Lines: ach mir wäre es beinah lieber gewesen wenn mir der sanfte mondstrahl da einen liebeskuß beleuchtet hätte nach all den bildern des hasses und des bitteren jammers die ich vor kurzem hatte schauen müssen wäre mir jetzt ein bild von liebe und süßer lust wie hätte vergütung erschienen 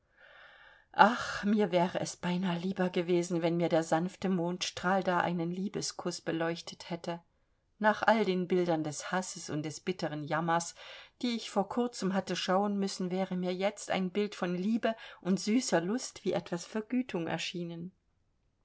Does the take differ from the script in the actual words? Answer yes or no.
yes